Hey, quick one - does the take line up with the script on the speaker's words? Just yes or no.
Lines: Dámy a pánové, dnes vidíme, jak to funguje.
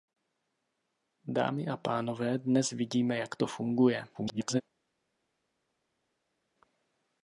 no